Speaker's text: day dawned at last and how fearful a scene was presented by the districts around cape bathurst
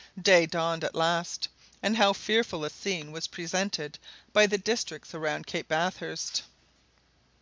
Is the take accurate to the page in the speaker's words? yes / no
yes